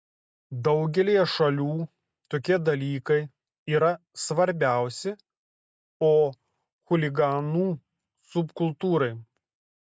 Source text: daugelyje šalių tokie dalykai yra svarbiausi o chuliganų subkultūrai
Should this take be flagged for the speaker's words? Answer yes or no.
no